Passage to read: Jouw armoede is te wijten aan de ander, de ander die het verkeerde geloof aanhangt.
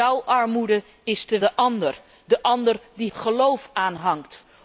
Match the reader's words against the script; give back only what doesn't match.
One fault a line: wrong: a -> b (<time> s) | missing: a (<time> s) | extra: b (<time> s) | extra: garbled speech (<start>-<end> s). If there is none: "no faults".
missing: wijten aan (1.4 s)
missing: het verkeerde (3.1 s)